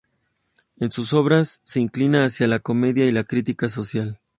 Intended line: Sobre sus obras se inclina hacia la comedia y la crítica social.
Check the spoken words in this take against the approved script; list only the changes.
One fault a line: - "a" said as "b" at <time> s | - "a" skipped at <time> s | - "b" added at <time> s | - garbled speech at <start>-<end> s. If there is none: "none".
- "Sobre" said as "En" at 0.8 s